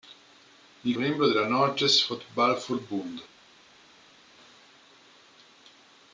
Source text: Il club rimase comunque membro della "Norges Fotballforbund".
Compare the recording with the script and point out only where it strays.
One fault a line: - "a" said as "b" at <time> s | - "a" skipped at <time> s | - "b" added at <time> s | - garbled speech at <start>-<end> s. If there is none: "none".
- "club rimase comunque" skipped at 1.0 s